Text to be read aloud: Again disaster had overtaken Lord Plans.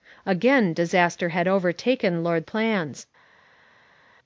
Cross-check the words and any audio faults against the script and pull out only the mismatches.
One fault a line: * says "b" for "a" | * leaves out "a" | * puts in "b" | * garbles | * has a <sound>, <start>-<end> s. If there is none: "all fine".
all fine